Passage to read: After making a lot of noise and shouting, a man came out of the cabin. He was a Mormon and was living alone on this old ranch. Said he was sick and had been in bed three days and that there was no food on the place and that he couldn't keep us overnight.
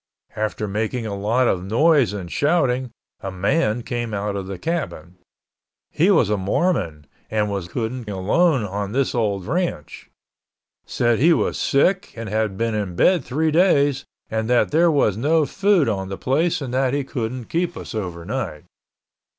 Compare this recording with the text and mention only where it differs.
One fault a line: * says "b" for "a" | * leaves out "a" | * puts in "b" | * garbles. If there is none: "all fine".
* says "couldn't" for "living"